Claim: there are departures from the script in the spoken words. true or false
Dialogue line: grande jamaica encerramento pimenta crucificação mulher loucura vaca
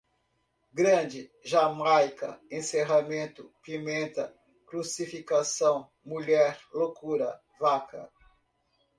false